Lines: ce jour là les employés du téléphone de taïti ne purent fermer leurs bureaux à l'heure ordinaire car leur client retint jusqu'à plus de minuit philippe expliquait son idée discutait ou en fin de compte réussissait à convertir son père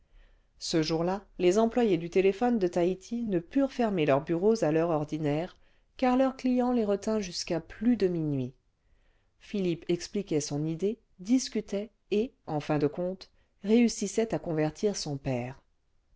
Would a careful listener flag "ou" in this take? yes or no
yes